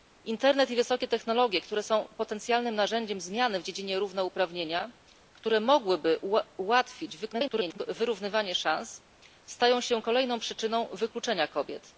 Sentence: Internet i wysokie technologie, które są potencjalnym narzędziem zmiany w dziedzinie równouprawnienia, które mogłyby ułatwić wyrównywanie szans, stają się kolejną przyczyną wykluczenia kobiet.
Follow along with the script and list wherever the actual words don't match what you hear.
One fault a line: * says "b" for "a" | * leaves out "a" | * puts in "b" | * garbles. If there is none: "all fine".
* garbles